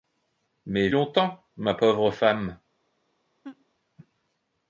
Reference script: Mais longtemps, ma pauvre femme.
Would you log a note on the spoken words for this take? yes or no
no